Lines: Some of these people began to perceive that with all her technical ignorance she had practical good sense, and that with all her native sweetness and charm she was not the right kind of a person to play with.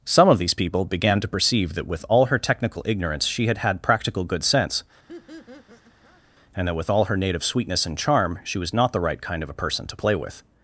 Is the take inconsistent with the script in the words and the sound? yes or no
yes